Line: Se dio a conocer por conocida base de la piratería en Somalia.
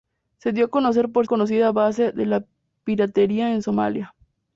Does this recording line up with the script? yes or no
yes